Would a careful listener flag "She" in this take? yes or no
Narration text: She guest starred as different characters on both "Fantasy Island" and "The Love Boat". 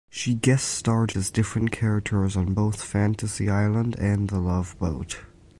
no